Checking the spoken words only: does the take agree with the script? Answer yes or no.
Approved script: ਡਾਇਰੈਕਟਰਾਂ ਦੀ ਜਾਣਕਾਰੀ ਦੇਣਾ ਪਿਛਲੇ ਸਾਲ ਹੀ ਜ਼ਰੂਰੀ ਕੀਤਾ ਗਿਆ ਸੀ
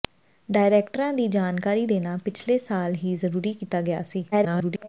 no